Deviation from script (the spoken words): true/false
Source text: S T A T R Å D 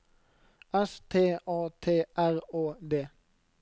false